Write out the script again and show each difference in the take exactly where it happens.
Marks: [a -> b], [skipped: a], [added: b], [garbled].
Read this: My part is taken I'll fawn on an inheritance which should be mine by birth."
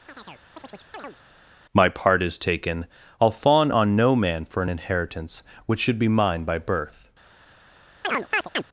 My part is taken I'll fawn on [added: no man for] an inheritance which should be mine by birth."